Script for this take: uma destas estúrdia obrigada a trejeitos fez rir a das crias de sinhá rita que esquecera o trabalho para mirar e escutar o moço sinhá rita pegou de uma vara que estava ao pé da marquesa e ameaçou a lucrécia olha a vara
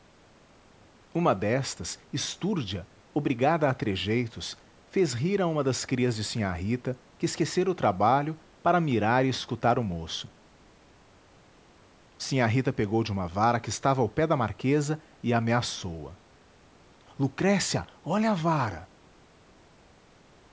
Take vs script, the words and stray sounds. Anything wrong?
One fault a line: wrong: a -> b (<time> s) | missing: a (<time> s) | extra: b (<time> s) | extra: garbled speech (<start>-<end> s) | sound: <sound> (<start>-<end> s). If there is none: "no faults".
extra: uma (5.5 s)